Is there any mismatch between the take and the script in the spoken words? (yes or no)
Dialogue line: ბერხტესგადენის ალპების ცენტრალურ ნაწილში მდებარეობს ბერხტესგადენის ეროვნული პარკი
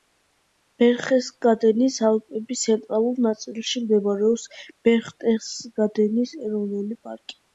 no